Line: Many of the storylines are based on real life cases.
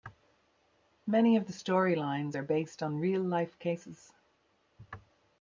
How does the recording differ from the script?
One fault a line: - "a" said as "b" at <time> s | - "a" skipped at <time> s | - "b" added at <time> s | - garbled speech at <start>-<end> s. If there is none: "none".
none